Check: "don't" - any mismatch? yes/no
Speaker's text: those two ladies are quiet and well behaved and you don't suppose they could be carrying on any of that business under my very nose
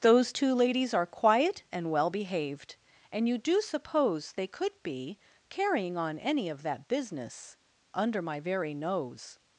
yes